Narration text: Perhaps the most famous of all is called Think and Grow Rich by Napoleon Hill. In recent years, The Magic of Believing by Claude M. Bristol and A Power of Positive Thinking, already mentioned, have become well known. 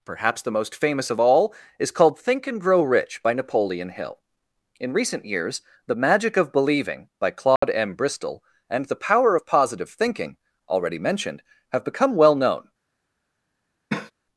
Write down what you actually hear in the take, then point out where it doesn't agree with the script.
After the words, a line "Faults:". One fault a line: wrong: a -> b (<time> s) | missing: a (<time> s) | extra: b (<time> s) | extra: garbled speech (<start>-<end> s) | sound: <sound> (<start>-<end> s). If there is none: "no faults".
Perhaps the most famous of all is called Think and Grow Rich by Napoleon Hill. In recent years, The Magic of Believing by Claude M. Bristol and The Power of Positive Thinking, already mentioned, have become well known.
Faults:
sound: dropout (7.6-7.6 s)
wrong: A -> The (8.9 s)
sound: cough (13.9-14.1 s)